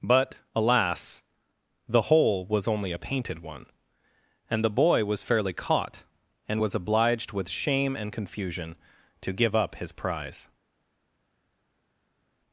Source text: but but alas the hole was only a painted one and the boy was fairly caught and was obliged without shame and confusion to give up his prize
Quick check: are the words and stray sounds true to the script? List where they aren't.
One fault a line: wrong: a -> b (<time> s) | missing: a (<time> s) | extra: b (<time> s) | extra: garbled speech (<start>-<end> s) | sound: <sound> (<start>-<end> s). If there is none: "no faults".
missing: but (0.4 s)
wrong: without -> with (7.3 s)